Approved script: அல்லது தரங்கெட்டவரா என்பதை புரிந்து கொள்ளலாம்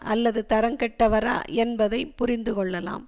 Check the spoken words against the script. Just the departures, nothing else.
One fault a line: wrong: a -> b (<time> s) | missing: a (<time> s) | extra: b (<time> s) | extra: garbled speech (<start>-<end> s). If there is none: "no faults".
no faults